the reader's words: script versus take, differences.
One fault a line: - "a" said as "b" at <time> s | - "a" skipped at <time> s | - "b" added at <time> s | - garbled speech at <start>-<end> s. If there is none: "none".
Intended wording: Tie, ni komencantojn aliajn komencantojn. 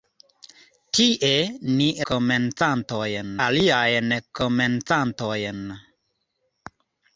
none